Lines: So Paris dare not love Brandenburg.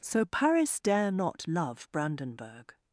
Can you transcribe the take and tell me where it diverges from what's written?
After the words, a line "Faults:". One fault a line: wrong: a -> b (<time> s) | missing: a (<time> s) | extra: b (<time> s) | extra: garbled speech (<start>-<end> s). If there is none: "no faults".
So Paris dare not love Brandenburg.
Faults:
no faults